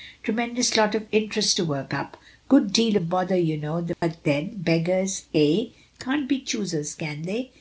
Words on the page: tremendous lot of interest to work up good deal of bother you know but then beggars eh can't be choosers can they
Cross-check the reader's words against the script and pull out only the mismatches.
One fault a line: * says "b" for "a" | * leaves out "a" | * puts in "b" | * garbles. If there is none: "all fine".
all fine